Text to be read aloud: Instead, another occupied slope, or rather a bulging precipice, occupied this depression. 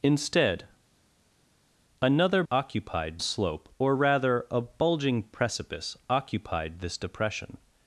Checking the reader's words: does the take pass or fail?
pass